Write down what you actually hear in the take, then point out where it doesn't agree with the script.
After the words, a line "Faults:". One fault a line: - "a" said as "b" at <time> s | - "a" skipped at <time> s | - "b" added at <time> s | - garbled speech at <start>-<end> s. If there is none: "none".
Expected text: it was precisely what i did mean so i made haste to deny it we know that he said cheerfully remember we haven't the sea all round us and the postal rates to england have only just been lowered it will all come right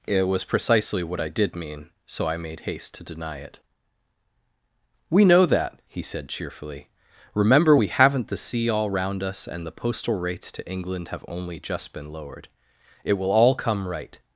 it was precisely what i did mean so i made haste to deny it we know that he said cheerfully remember we haven't the sea all round us and the postal rates to england have only just been lowered it will all come right
Faults:
none